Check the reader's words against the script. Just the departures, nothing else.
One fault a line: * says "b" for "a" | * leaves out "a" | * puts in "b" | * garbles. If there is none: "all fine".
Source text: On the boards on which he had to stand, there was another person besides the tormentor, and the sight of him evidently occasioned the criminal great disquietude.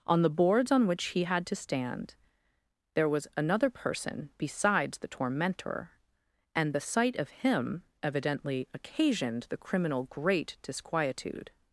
all fine